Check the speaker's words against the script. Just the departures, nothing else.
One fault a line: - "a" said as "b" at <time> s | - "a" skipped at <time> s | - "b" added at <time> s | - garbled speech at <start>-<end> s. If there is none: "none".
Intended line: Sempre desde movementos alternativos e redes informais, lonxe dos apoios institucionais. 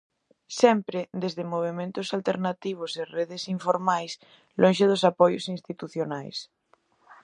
none